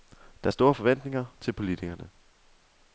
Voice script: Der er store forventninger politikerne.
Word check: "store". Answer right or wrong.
right